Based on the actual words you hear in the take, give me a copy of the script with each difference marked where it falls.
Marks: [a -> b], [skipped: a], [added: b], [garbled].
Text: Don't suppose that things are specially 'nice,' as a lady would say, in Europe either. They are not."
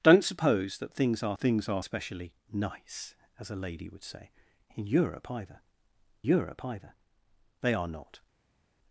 Don't suppose that things are [added: things are] specially 'nice,' as a lady would say, in Europe either. [added: Europe either] They are not."